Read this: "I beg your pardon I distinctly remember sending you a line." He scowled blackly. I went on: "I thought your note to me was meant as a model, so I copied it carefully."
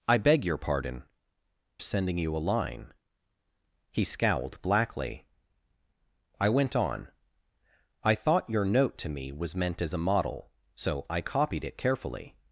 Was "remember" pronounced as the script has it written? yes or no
no